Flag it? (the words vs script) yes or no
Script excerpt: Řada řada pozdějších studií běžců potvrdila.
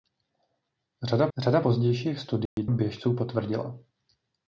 no